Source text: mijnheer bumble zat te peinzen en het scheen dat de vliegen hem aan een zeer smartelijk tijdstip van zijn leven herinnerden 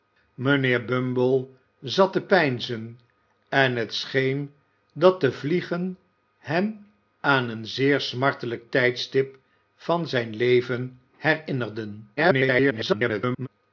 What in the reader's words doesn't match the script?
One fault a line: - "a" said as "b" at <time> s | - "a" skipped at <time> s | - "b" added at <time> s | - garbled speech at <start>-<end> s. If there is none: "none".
- garbled speech at 12.2-13.5 s